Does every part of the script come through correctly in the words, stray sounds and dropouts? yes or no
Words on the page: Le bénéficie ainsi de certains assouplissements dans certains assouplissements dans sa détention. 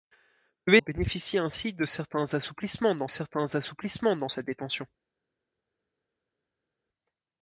yes